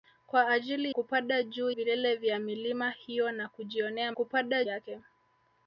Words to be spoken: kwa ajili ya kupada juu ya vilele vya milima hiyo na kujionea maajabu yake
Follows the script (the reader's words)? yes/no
no